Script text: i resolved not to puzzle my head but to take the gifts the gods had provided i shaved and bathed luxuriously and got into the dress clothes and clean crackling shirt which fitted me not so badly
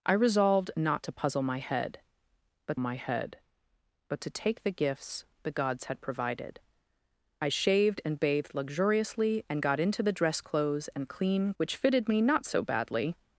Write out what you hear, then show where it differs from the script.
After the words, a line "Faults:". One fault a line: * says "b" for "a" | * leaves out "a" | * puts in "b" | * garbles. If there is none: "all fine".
i resolved not to puzzle my head but my head but to take the gifts the gods had provided i shaved and bathed luxuriously and got into the dress clothes and clean which fitted me not so badly
Faults:
* puts in "my head but"
* leaves out "crackling shirt"